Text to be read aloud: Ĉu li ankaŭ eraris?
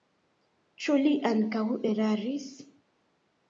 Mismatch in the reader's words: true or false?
false